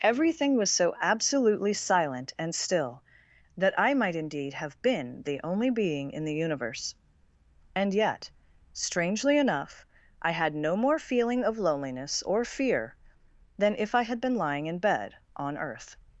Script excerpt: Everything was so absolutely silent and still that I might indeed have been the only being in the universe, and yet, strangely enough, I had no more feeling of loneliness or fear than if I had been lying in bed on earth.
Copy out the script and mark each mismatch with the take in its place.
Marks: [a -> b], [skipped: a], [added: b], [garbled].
Everything was so absolutely silent and still that I might indeed have been the only being in the universe, and yet, strangely enough, I had no more feeling of loneliness or fear than if I had been lying in bed on earth.